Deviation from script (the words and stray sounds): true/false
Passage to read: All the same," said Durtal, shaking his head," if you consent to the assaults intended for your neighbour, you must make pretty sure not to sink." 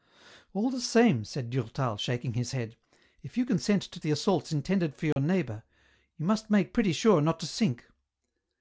true